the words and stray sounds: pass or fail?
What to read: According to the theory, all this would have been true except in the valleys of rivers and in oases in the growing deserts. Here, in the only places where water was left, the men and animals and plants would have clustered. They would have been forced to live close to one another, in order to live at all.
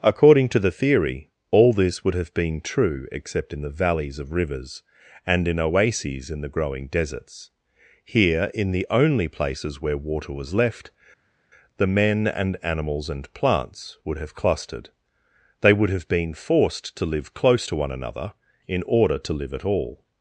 pass